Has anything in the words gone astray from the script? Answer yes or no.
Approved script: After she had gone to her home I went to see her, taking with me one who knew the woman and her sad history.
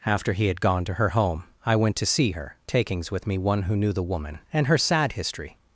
yes